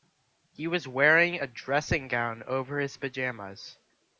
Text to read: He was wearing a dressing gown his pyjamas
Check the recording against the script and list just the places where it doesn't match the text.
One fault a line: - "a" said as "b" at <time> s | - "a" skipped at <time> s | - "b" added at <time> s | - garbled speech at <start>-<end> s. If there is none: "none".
- "over" added at 2.5 s